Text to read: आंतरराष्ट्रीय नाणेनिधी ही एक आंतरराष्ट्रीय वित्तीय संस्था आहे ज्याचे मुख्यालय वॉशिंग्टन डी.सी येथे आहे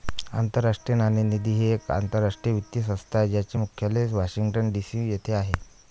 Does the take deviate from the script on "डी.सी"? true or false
false